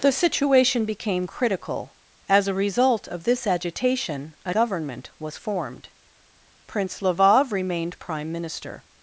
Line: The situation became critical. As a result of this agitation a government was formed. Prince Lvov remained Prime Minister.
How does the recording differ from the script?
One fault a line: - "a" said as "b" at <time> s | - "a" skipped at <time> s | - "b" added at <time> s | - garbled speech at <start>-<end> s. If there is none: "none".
none